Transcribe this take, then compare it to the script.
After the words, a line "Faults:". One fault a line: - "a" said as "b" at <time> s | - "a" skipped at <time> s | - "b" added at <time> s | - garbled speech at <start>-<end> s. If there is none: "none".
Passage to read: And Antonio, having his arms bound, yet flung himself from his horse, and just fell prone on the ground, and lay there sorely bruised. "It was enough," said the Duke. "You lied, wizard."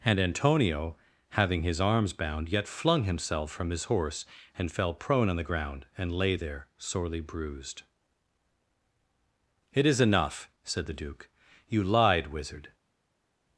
And Antonio, having his arms bound, yet flung himself from his horse, and fell prone on the ground, and lay there sorely bruised. "It is enough," said the Duke. "You lied, wizard."
Faults:
- "just" skipped at 4.7 s
- "was" said as "is" at 9.9 s